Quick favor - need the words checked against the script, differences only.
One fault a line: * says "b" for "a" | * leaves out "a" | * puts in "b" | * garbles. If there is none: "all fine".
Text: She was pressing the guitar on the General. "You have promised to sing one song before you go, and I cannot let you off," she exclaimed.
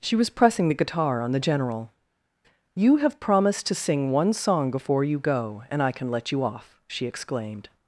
* says "can" for "cannot"